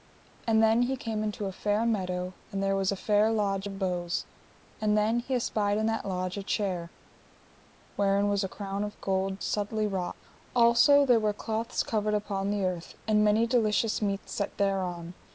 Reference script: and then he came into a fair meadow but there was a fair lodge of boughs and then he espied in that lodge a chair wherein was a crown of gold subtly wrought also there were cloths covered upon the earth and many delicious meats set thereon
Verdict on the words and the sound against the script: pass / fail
fail